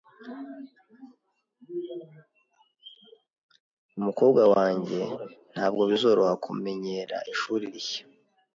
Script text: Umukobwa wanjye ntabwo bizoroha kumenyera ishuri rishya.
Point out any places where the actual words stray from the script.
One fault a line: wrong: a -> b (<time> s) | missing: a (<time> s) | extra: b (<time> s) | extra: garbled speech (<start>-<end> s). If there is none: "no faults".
no faults